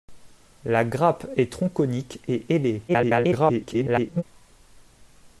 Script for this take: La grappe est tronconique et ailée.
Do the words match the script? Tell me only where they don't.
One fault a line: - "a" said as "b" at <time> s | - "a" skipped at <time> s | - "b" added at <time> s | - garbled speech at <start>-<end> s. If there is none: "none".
- garbled speech at 2.9-4.2 s